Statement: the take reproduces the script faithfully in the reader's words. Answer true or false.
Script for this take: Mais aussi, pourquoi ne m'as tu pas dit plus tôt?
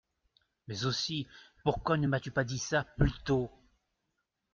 false